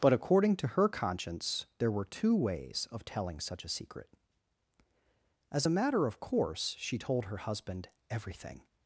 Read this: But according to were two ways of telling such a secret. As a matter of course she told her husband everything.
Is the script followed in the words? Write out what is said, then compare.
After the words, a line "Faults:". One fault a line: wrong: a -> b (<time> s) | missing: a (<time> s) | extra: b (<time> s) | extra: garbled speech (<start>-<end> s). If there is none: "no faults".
But according to her conscience there were two ways of telling such a secret. As a matter of course she told her husband everything.
Faults:
extra: her conscience there (0.7 s)